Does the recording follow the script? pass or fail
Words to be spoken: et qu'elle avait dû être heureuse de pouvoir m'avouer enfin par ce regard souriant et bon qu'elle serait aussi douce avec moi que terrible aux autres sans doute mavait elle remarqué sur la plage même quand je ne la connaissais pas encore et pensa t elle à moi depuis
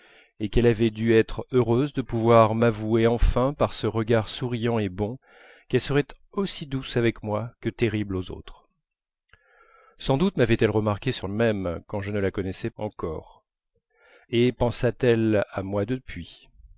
fail